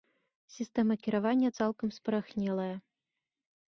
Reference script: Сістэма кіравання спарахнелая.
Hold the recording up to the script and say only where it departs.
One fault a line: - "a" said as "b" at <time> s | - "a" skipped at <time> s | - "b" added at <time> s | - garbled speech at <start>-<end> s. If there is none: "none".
- "цалкам" added at 1.6 s